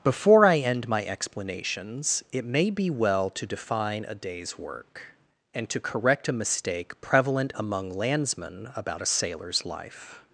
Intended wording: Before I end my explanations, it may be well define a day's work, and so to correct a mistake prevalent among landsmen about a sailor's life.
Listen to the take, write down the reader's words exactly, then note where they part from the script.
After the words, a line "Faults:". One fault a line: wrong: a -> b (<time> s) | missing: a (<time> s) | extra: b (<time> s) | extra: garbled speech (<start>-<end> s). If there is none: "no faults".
Before I end my explanations, it may be well to define a day's work, and to correct a mistake prevalent among landsmen about a sailor's life.
Faults:
extra: to (3.3 s)
missing: so (5.7 s)